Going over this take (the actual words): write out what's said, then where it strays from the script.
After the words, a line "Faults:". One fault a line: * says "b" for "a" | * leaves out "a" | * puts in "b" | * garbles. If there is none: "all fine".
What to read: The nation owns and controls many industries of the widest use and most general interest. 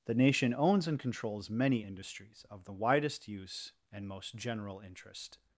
The nation owns and controls many industries of the widest use and most general interest.
Faults:
all fine